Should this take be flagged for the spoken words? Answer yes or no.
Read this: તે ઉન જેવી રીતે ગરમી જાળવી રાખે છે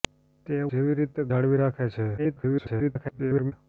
yes